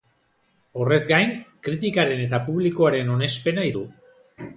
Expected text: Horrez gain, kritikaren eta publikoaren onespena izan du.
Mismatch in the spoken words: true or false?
true